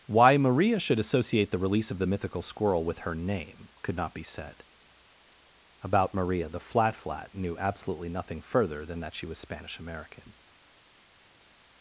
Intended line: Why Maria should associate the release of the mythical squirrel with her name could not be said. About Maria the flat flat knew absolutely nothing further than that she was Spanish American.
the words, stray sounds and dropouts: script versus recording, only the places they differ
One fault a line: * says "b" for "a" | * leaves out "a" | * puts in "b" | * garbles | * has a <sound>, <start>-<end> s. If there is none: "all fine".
all fine